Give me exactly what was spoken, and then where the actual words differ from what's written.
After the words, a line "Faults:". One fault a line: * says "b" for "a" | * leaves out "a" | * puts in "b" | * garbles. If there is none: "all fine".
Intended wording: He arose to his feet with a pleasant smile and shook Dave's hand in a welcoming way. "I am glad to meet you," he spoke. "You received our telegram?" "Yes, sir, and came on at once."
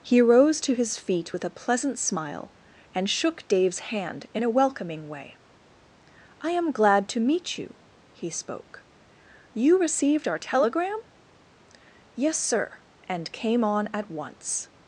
He rose to his feet with a pleasant smile and shook Dave's hand in a welcoming way. "I am glad to meet you," he spoke. "You received our telegram?" "Yes, sir, and came on at once."
Faults:
* says "rose" for "arose"